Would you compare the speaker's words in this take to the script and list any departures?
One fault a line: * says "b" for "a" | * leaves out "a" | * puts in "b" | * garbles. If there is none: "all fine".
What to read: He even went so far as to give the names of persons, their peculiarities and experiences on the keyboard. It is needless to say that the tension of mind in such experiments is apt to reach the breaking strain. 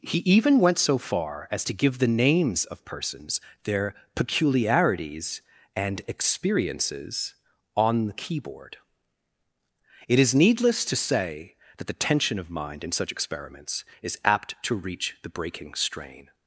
all fine